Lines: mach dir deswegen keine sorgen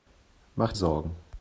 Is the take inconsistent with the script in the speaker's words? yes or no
yes